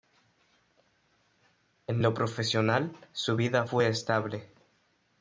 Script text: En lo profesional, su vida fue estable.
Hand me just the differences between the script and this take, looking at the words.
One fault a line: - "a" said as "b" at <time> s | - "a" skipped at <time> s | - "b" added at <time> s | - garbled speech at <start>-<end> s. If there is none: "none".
none